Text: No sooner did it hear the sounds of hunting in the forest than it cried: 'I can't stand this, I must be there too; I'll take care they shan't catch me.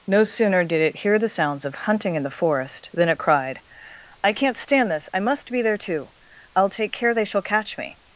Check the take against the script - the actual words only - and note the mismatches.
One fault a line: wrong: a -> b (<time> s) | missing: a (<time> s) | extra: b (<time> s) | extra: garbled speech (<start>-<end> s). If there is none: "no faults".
wrong: shan't -> shall (7.2 s)